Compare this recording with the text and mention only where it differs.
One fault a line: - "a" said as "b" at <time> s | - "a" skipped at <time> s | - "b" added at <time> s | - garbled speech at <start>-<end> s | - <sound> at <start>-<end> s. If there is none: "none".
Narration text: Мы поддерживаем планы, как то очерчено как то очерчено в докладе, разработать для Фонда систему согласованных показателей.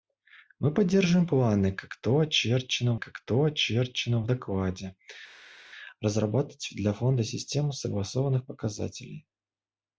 none